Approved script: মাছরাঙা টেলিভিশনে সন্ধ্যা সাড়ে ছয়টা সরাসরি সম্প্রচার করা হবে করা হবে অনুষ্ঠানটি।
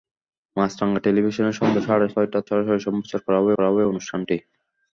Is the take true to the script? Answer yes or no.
yes